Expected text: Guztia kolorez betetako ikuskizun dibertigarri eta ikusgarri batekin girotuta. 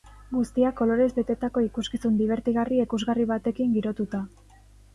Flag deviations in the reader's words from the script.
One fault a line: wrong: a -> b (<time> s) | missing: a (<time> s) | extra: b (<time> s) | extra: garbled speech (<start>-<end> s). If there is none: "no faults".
missing: eta (2.8 s)